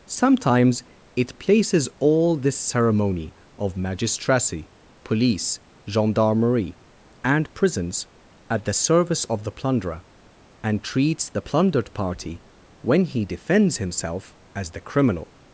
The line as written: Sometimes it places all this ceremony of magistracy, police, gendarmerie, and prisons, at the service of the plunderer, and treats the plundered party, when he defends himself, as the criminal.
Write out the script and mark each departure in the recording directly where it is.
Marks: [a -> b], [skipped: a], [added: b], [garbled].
Sometimes it places all this ceremony of magistracy, police, gendarmerie, and prisons, at the service of the plunderer, and treats the plundered party, when he defends himself, as the criminal.